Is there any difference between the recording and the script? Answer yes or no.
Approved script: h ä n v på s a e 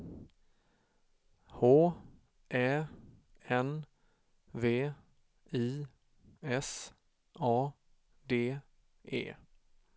yes